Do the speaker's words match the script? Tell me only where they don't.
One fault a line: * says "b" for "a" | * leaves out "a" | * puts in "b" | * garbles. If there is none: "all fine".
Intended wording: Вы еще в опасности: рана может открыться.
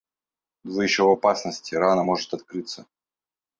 all fine